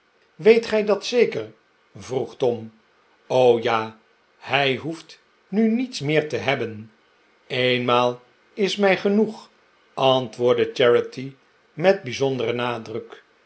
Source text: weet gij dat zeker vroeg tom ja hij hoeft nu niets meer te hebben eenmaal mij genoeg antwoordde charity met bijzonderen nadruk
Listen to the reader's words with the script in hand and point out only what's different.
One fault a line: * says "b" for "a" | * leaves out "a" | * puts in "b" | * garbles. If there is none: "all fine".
* puts in "is"